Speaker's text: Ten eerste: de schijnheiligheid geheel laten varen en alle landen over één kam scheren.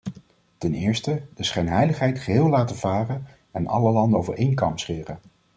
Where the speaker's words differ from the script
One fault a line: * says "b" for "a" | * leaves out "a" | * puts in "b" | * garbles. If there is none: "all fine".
all fine